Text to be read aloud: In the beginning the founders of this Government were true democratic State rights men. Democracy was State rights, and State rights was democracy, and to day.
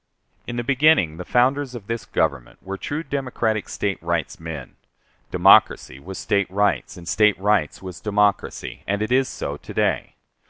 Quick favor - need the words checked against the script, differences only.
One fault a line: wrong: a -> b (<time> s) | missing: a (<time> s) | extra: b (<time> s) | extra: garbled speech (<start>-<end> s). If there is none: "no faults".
extra: it is so (9.0 s)